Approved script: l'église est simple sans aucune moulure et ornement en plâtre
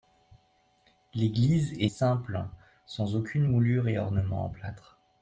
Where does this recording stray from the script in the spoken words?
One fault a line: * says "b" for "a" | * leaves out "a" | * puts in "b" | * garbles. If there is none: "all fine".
all fine